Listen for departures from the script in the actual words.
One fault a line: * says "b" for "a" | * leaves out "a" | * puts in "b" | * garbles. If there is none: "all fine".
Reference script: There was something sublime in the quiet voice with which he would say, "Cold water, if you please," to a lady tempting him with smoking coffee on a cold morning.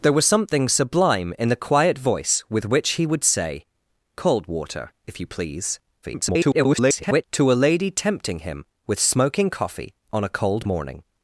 * garbles